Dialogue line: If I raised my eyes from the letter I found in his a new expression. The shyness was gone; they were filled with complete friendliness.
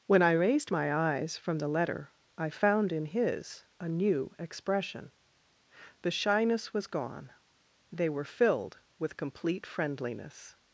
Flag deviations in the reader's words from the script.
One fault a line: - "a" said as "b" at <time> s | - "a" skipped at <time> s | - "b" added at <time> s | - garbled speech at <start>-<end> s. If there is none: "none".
- "If" said as "When" at 0.1 s